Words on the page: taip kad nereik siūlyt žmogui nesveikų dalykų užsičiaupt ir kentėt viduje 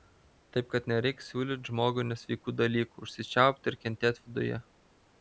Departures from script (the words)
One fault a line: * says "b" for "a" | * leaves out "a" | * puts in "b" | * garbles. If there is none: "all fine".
all fine